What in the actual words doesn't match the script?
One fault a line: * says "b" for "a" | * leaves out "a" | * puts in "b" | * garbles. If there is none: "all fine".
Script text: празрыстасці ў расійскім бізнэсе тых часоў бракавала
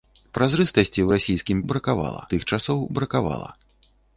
* says "бракавала" for "бізнэсе"